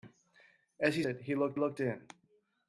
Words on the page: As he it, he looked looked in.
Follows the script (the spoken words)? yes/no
yes